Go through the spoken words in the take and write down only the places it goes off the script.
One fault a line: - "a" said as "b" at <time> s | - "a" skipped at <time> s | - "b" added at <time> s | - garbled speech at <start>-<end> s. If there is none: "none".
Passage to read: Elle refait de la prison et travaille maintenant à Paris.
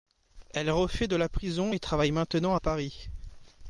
none